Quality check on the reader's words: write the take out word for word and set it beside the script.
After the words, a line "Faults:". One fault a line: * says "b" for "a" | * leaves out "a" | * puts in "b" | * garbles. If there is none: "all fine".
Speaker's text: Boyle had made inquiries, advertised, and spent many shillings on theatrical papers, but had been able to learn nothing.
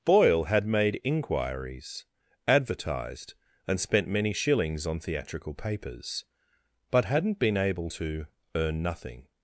Boyle had made inquiries, advertised, and spent many shillings on theatrical papers, but hadn't been able to earn nothing.
Faults:
* says "hadn't" for "had"
* says "earn" for "learn"